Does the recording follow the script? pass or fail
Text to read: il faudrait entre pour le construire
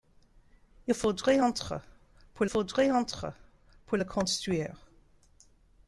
fail